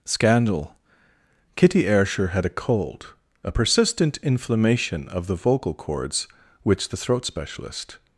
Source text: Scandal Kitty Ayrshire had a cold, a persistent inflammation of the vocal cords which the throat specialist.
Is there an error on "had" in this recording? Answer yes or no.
no